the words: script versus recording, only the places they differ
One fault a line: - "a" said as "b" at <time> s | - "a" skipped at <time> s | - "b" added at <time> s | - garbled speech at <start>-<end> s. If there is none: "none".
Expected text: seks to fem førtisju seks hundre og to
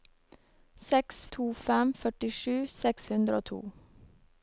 none